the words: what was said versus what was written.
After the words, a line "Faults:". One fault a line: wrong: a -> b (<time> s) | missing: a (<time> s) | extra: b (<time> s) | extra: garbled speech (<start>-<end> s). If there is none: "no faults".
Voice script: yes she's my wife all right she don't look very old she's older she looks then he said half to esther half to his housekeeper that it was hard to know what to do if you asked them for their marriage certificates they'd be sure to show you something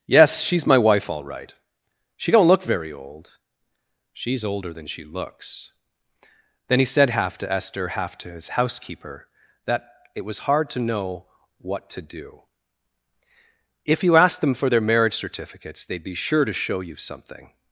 yes she's my wife all right she don't look very old she's older than she looks then he said half to esther half to his housekeeper that it was hard to know what to do if you asked them for their marriage certificates they'd be sure to show you something
Faults:
extra: than (4.7 s)